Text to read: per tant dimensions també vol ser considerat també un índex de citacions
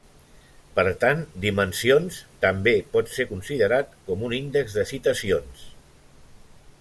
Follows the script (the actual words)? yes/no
no